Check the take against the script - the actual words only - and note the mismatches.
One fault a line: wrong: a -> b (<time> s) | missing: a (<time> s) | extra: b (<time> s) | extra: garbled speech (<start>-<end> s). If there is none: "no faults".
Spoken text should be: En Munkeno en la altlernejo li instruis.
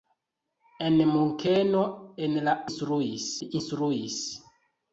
wrong: altlernejo -> instruis (2.7 s)